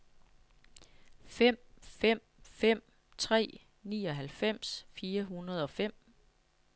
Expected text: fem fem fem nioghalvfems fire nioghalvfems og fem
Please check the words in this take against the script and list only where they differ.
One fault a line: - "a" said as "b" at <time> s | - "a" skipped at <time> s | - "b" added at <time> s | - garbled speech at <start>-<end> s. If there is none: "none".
- "tre" added at 3.2 s
- "nioghalvfems" said as "hundrede" at 5.2 s